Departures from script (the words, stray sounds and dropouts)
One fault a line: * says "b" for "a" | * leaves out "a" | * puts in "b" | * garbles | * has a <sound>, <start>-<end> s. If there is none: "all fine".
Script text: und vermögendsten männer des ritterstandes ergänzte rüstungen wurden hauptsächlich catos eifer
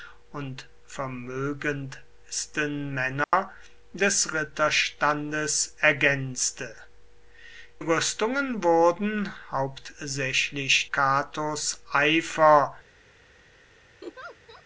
* has a dropout, 3.2-3.3 s
* has a laugh, 14.0-14.6 s